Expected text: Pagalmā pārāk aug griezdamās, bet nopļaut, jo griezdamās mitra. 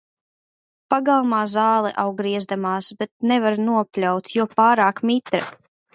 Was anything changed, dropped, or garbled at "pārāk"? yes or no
yes